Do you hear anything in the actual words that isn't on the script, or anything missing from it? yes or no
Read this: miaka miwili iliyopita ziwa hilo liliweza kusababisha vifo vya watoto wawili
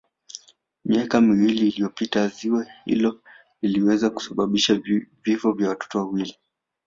no